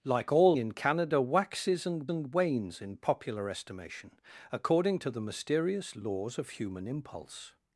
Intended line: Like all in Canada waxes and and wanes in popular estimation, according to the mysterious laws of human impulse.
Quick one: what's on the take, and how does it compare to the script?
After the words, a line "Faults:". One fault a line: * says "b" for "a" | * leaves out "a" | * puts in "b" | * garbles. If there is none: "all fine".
Like all in Canada waxes and and wanes in popular estimation, according to the mysterious laws of human impulse.
Faults:
all fine